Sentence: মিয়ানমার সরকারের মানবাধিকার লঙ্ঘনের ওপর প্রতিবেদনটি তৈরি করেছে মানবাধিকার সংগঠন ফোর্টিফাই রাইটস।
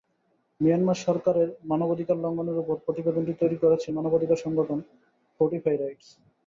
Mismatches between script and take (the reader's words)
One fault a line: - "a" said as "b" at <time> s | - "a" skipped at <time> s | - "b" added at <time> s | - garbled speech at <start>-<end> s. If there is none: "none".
none